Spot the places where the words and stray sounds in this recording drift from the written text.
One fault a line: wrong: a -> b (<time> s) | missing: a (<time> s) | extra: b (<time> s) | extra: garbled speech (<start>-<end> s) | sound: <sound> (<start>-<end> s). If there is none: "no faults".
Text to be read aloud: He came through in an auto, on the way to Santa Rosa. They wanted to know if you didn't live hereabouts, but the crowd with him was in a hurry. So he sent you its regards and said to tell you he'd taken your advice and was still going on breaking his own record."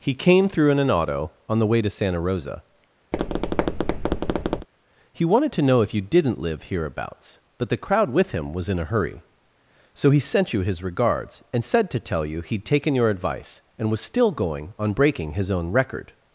sound: tap (3.1-4.7 s)
wrong: They -> He (5.1 s)
wrong: its -> his (10.6 s)